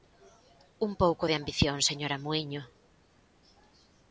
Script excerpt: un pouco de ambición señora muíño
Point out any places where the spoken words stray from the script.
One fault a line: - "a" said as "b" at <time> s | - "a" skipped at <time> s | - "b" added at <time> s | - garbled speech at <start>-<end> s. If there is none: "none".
none